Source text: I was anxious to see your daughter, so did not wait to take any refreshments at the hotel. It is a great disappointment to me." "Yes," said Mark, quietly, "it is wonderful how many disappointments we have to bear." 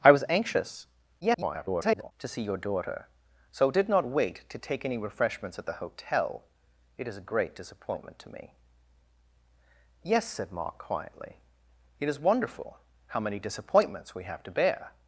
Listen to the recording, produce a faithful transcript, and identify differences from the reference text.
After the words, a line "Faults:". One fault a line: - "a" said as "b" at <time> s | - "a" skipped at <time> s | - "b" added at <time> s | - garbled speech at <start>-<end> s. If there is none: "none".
I was anxious [garbled] to see your daughter, so did not wait to take any refreshments at the hotel. It is a great disappointment to me." "Yes," said Mark, quietly, "it is wonderful how many disappointments we have to bear."
Faults:
- garbled speech at 1.2-2.1 s